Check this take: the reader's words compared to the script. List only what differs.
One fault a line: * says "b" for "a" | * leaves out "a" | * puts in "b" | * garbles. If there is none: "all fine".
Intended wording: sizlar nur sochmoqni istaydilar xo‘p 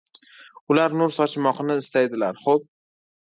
* says "ular" for "sizlar"